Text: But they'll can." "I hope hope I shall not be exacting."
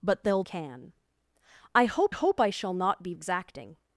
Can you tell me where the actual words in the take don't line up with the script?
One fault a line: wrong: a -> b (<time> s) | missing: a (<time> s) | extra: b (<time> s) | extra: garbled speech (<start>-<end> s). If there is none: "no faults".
no faults